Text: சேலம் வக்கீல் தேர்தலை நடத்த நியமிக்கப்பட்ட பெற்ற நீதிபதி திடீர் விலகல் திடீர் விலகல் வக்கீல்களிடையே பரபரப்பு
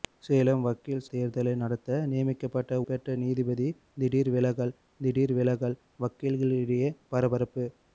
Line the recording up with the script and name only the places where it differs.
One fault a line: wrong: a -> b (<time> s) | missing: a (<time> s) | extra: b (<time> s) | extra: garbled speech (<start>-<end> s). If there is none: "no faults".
no faults